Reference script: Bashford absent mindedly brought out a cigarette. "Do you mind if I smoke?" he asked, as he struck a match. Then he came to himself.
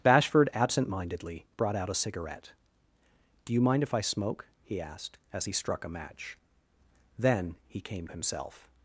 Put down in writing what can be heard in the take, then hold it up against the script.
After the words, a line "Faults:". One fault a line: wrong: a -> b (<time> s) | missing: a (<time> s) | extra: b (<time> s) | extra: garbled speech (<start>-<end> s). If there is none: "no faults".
Bashford absent mindedly brought out a cigarette. "Do you mind if I smoke?" he asked, as he struck a match. Then he came himself.
Faults:
missing: to (8.1 s)